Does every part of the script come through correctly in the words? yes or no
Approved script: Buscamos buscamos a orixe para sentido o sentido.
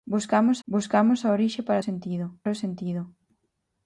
yes